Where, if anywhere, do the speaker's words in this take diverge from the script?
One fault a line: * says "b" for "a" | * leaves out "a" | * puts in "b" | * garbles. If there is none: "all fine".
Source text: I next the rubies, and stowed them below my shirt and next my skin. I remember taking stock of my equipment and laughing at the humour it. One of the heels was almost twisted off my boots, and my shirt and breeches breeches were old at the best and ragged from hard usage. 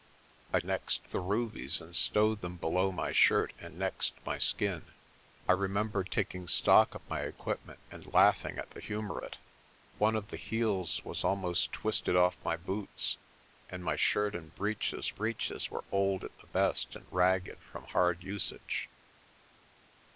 all fine